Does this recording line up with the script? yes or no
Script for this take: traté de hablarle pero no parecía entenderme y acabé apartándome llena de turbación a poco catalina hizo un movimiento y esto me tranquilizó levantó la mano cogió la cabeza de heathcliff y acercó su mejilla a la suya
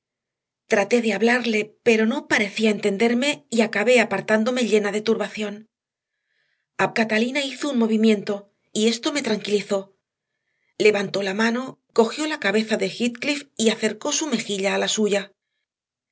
no